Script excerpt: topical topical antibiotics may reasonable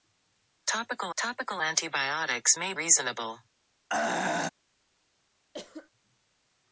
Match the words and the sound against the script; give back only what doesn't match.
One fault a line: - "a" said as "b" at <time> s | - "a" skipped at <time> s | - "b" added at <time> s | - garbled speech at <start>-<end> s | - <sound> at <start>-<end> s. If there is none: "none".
- throat clearing at 3.9-4.5 s
- cough at 5.5-5.9 s